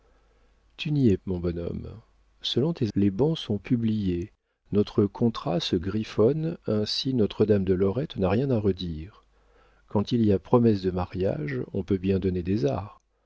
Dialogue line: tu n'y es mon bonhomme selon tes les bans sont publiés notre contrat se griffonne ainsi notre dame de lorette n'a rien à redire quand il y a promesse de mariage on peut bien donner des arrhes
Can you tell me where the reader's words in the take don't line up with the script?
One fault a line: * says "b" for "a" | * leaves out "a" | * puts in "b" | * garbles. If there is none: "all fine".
all fine